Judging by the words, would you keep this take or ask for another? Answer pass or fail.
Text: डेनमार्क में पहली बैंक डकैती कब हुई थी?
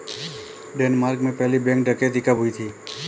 pass